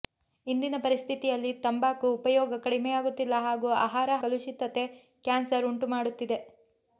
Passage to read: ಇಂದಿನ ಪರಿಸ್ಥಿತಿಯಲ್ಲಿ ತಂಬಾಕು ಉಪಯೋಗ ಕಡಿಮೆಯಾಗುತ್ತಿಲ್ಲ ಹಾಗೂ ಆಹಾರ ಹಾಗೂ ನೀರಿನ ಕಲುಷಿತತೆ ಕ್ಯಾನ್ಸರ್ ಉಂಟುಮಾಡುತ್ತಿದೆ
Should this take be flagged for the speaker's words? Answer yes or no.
yes